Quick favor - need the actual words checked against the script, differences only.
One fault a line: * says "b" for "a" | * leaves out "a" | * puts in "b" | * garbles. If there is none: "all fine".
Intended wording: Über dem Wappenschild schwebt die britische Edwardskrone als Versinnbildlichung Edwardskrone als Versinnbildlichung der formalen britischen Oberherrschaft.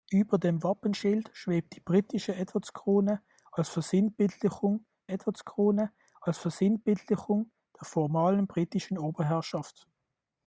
all fine